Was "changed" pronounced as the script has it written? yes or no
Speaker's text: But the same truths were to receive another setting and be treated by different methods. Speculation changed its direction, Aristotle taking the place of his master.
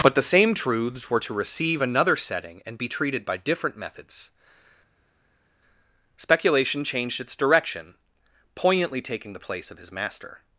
yes